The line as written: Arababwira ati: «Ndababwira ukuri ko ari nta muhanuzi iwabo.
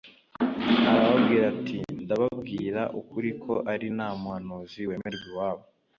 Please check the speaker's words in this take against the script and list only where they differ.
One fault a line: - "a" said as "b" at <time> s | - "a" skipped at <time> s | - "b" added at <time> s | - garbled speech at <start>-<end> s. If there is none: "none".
- "wemerwa" added at 4.9 s